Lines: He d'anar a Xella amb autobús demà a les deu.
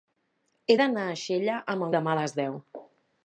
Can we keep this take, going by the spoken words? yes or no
no